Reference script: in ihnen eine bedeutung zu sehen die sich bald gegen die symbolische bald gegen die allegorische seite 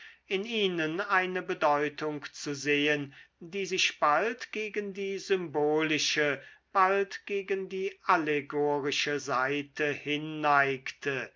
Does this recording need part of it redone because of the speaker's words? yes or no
no